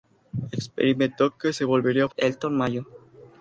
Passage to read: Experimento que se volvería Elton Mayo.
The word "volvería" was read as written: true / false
true